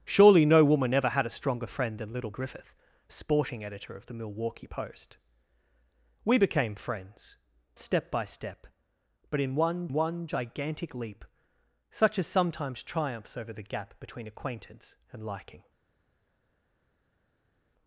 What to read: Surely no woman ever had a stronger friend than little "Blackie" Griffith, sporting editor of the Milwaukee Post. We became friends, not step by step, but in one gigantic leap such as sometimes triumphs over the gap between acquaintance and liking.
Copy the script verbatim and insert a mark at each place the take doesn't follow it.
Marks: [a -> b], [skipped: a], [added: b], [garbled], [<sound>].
Surely no woman ever had a stronger friend than little [skipped: "Blackie"] Griffith, sporting editor of the Milwaukee Post. We became friends, [skipped: not] step by step, but in one [added: one] gigantic leap such as sometimes triumphs over the gap between acquaintance and liking.